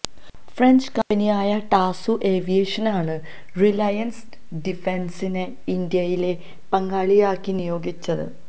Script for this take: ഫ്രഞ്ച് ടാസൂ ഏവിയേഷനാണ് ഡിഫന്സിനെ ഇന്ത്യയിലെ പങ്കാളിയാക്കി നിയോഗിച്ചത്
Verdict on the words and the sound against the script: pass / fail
fail